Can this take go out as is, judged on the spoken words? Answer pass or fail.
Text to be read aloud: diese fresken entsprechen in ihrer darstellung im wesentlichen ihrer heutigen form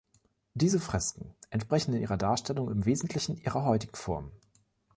pass